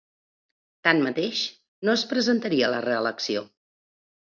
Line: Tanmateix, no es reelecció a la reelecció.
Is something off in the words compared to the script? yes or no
yes